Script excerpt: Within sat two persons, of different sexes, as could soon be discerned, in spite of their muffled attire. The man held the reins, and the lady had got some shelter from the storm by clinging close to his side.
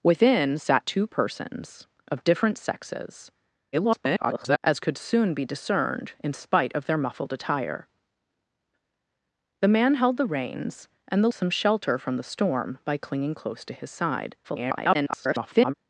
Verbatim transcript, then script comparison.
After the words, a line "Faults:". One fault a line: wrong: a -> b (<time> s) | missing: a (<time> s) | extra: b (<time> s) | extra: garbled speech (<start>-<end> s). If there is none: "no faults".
Within sat two persons, of different sexes, [garbled] as could soon be discerned, in spite of their muffled attire. The man held the reins, and the some shelter from the storm by clinging close to his side. [garbled]
Faults:
extra: garbled speech (3.7-4.6 s)
missing: lady had got (11.3 s)
extra: garbled speech (14.4-15.7 s)